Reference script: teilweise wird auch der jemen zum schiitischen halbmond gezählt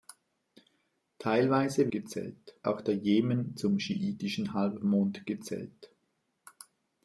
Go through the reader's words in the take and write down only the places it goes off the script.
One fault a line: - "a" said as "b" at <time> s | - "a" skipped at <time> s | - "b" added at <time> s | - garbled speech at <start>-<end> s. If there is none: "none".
- "wird" said as "gezählt" at 1.9 s